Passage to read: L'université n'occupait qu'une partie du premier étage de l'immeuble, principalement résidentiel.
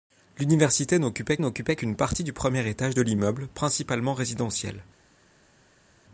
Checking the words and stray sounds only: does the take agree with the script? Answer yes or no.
no